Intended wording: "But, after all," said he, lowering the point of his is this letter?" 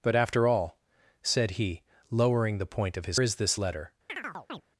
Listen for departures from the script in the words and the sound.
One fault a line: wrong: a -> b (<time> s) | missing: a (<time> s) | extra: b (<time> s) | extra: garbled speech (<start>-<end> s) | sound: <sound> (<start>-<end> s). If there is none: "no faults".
sound: chirp (4.1-4.6 s)